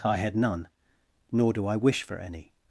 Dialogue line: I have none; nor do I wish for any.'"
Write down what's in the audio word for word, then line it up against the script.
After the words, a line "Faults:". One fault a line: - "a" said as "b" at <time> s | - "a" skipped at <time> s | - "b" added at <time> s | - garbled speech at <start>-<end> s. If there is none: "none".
I had none; nor do I wish for any.'"
Faults:
- "have" said as "had" at 0.2 s